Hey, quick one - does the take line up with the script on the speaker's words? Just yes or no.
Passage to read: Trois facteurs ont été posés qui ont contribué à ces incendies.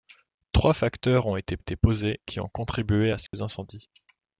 no